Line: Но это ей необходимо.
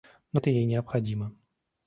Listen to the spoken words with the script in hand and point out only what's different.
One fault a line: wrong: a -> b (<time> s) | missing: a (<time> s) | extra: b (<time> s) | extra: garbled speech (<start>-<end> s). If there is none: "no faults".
no faults